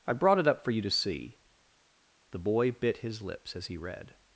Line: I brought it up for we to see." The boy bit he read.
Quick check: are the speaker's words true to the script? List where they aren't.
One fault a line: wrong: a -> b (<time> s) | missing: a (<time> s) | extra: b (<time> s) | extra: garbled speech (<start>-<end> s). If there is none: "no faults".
wrong: we -> you (0.7 s)
extra: his lips as (3.0 s)